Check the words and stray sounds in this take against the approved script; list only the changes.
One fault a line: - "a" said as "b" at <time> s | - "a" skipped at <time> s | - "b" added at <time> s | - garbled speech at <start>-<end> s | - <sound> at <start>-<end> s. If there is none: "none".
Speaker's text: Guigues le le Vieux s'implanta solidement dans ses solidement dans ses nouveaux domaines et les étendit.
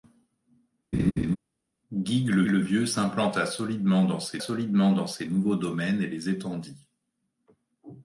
- laugh at 0.9-1.4 s